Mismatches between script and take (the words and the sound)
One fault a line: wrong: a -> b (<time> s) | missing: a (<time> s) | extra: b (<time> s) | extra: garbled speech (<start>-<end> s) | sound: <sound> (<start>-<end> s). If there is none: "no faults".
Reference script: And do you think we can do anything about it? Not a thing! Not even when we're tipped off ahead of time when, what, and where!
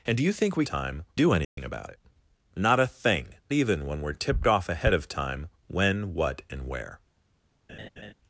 wrong: can -> time (0.6 s)
sound: dropout (1.4-1.6 s)
missing: Not (3.3 s)
sound: laugh (7.7-8.1 s)